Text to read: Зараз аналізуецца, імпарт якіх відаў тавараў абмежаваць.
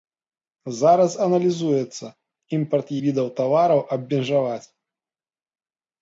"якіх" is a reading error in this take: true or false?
true